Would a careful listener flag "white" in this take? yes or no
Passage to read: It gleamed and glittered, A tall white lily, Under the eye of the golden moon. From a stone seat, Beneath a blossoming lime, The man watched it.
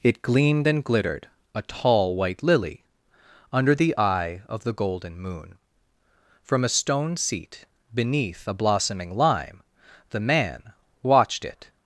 no